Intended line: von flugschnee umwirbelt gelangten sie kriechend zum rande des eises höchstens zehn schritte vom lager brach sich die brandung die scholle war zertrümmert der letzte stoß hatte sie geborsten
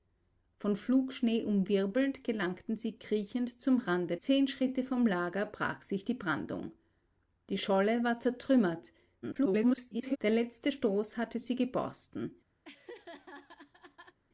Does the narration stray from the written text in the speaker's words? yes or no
yes